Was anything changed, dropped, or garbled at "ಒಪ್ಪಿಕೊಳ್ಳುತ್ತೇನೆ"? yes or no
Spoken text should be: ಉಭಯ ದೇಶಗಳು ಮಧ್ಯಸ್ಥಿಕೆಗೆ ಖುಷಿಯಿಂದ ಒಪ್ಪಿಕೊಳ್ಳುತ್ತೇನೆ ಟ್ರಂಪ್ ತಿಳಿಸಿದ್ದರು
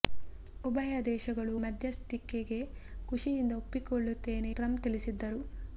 no